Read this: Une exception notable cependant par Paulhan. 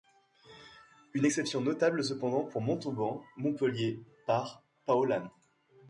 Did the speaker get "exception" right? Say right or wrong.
right